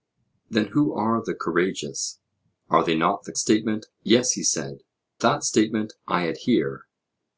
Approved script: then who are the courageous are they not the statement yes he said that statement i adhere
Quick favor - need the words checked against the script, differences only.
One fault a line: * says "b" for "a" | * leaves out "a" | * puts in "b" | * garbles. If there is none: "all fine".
all fine